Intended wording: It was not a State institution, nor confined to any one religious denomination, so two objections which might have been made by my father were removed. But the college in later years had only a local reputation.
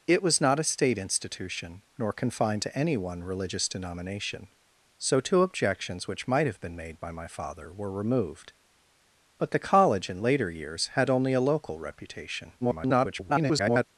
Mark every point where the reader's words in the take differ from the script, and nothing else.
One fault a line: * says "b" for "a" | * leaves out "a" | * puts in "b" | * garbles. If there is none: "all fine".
* garbles